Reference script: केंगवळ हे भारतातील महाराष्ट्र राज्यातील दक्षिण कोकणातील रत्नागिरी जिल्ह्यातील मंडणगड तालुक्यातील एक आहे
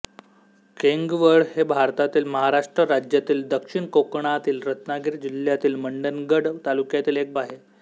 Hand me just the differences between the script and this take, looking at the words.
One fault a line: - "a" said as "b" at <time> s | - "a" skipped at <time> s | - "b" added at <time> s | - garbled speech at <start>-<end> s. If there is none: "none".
none